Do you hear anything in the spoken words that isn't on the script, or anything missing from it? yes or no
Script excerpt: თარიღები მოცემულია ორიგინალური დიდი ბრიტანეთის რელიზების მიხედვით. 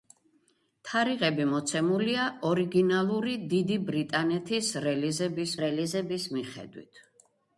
yes